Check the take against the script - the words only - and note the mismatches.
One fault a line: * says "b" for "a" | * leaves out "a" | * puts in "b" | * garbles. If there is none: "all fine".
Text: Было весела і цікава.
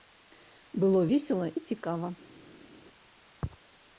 all fine